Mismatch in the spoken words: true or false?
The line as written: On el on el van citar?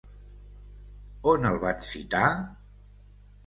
true